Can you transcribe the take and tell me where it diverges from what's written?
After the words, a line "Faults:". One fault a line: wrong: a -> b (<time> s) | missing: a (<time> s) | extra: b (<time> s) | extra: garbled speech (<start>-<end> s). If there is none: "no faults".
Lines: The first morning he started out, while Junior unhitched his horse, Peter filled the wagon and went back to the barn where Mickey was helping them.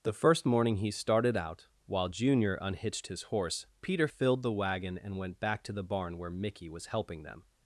The first morning he started out, while Junior unhitched his horse, Peter filled the wagon and went back to the barn where Mickey was helping them.
Faults:
no faults